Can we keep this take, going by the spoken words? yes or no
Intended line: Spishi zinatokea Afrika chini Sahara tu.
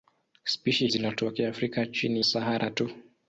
yes